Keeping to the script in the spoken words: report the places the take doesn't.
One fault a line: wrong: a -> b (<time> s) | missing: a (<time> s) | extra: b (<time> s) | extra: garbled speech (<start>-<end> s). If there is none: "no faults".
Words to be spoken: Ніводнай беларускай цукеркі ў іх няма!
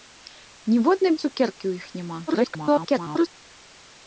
missing: беларускай (1.1 s)
extra: garbled speech (2.3-3.3 s)